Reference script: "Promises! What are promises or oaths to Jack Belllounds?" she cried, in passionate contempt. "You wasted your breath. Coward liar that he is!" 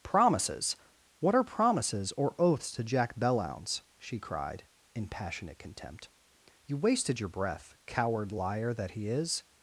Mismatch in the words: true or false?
false